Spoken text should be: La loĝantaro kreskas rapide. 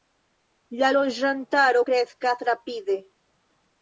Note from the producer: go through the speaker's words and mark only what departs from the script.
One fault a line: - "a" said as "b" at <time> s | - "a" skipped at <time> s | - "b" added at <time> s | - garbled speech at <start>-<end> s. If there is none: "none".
none